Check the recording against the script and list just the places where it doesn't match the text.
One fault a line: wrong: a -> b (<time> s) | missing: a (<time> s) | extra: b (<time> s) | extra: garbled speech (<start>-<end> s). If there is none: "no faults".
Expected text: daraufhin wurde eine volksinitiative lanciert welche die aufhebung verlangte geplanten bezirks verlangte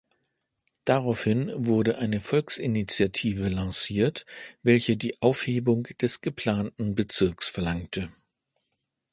wrong: verlangte -> des (6.0 s)